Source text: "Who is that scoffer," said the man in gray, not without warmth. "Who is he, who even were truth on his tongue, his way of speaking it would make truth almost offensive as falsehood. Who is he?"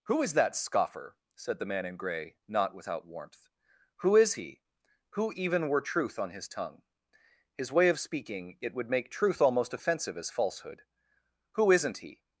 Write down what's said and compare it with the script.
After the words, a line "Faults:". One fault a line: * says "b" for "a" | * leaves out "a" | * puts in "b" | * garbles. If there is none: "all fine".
"Who is that scoffer," said the man in gray, not without warmth. "Who is he, who even were truth on his tongue, his way of speaking it would make truth almost offensive as falsehood. Who isn't he?"
Faults:
* says "isn't" for "is"